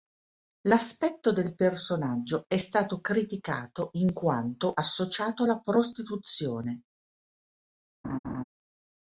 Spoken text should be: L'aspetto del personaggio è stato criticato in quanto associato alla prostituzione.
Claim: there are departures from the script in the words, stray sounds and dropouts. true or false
true